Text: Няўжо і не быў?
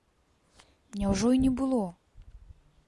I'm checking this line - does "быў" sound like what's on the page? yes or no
no